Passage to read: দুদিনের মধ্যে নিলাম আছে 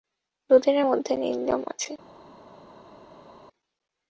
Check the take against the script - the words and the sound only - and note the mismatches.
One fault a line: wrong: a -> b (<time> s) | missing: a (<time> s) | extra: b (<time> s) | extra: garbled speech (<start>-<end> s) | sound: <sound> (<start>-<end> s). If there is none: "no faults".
no faults